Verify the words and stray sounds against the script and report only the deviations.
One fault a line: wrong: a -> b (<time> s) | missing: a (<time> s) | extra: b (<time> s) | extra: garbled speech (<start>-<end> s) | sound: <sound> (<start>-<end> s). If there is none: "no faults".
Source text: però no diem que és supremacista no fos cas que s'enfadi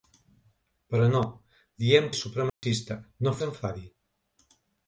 missing: que (2.1 s)
sound: dropout (2.5-2.6 s)
missing: fos cas que (3.4 s)